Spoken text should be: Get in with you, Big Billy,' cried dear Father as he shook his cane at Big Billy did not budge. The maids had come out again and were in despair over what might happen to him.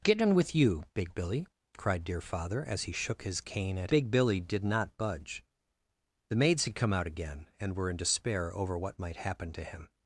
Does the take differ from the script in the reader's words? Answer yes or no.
no